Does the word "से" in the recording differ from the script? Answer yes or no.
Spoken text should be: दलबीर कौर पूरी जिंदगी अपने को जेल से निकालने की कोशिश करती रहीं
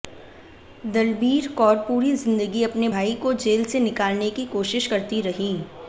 no